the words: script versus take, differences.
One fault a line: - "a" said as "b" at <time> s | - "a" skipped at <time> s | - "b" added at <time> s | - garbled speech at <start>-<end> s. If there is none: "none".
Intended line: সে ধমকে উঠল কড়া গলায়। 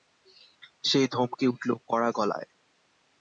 none